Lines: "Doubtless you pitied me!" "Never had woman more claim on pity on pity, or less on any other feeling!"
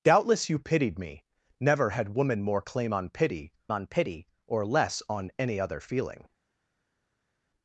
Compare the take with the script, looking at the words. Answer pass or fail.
pass